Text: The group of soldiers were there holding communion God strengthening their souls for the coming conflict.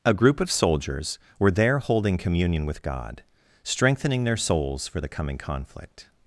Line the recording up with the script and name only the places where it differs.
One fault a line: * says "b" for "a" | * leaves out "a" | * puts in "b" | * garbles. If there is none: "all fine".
* says "A" for "The"
* puts in "with"